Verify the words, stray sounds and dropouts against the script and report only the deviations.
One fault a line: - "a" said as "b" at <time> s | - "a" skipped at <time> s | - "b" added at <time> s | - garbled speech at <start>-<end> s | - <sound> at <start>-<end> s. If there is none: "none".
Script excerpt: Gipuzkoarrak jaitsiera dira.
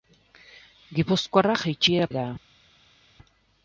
none